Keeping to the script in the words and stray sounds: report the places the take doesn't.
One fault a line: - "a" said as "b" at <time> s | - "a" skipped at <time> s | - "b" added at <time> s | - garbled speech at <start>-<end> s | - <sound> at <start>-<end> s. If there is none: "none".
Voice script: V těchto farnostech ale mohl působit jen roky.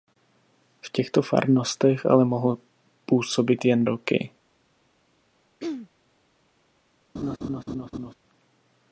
- throat clearing at 5.6-5.9 s
- laugh at 7.2-8.1 s